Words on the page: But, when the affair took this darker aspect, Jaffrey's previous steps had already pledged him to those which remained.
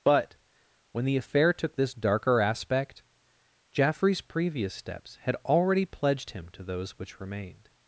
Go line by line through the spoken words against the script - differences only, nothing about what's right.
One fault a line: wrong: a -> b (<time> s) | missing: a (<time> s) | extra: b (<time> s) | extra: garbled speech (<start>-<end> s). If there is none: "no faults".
no faults